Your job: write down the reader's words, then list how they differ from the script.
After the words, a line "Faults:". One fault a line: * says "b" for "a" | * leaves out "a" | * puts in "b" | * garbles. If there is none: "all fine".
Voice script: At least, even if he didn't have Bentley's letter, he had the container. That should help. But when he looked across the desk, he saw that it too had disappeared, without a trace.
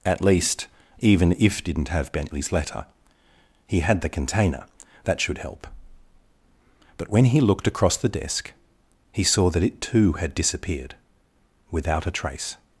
At least, even if didn't have Bentley's letter, he had the container. That should help. But when he looked across the desk, he saw that it too had disappeared, without a trace.
Faults:
* leaves out "he"